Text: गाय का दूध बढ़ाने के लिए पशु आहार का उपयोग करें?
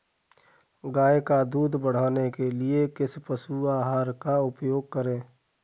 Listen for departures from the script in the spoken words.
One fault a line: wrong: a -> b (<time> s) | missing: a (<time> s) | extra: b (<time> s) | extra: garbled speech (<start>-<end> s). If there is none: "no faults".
extra: किस (2.9 s)